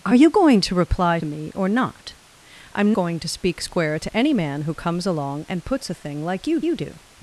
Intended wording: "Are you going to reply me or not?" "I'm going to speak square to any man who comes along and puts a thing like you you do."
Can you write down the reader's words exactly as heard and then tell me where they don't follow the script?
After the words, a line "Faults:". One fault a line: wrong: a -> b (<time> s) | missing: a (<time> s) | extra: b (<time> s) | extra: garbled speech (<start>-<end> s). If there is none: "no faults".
"Are you going to reply me or not?" "I'm going to speak square to any man who comes along and puts a thing like you you do."
Faults:
no faults